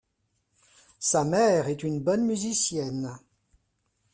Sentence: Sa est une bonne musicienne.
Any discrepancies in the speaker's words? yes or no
yes